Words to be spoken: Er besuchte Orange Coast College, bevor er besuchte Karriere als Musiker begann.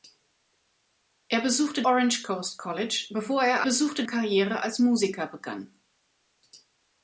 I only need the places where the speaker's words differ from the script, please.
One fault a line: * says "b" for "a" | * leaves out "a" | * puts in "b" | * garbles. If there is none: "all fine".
all fine